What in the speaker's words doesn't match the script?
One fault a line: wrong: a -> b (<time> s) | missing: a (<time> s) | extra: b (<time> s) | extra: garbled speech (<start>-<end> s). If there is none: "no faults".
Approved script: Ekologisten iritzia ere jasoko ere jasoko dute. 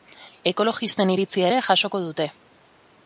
missing: ere jasoko (2.0 s)